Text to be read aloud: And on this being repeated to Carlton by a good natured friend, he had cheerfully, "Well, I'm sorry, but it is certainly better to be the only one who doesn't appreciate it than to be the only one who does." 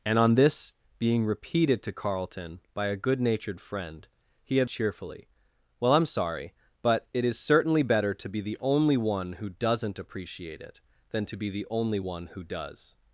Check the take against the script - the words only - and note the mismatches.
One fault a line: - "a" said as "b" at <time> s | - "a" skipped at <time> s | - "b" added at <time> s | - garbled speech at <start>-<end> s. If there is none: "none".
none